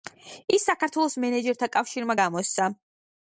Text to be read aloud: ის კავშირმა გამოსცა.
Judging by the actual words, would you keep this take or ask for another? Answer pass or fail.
fail